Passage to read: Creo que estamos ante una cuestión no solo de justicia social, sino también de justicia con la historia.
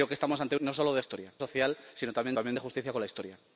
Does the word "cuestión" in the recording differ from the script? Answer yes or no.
yes